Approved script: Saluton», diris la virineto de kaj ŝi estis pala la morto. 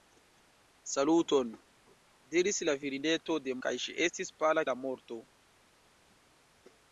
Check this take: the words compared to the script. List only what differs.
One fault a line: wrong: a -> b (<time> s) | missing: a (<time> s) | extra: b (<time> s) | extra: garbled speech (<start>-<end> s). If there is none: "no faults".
no faults